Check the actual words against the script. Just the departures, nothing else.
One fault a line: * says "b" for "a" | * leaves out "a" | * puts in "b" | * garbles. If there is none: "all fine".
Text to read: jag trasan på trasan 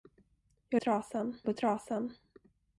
all fine